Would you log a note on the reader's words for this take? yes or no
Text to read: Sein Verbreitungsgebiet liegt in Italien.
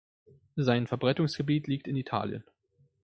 no